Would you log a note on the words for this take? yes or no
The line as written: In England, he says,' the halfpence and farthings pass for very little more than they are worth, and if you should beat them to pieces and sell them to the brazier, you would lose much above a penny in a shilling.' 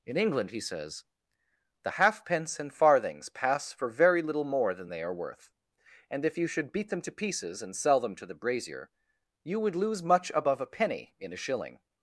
no